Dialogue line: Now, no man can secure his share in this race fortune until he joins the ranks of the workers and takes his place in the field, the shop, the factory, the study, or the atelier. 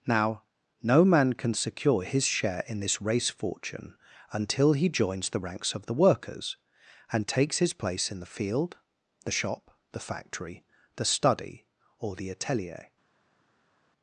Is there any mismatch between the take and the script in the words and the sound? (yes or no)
no